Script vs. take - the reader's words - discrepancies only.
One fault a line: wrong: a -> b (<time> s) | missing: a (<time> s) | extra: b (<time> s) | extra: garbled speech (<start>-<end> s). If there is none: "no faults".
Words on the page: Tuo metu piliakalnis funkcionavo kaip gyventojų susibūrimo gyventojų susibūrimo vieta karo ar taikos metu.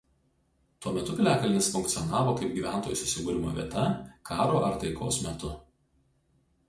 missing: gyventojų susibūrimo (3.5 s)